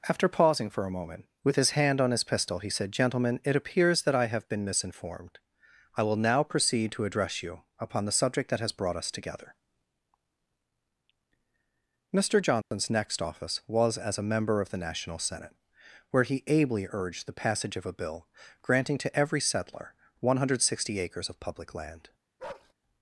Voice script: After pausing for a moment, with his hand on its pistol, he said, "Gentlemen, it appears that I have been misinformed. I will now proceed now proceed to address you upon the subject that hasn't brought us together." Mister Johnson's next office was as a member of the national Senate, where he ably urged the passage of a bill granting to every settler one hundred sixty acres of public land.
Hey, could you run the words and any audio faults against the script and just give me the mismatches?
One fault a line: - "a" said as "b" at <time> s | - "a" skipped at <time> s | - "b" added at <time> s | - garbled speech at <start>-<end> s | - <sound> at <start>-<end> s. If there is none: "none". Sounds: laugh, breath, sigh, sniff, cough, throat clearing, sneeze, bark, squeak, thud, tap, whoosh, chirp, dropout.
- "its" said as "his" at 2.1 s
- "now proceed" skipped at 6.9 s
- "hasn't" said as "has" at 8.6 s
- dropout at 12.6-12.7 s
- bark at 22.4-22.7 s